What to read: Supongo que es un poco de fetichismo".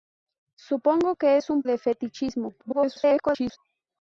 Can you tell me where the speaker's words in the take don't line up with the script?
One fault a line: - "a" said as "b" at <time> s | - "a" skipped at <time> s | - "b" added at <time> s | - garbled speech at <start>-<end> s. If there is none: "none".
- "poco" skipped at 1.6 s
- garbled speech at 2.6-3.6 s